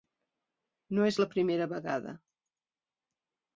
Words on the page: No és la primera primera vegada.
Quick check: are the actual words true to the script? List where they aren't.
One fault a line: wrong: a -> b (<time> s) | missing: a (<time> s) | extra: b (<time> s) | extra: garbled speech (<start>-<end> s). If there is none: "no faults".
missing: primera (1.7 s)